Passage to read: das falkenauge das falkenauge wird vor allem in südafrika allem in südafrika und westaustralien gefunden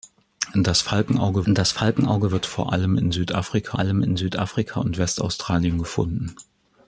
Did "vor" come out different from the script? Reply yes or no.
no